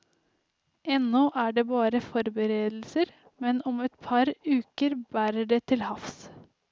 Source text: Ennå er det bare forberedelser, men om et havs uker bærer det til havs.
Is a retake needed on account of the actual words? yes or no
yes